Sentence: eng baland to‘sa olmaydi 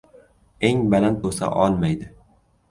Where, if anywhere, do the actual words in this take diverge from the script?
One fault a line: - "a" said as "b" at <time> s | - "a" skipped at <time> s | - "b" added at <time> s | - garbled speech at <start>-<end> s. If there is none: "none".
none